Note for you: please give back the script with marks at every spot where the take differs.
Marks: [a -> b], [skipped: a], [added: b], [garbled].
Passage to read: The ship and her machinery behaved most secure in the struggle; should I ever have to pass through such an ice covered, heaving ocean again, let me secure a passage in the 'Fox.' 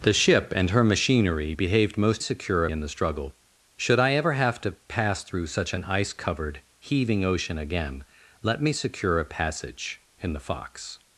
The ship and her machinery behaved most secure in the struggle; should I ever have to pass through such an ice covered, heaving ocean again, let me secure a passage in the 'Fox.'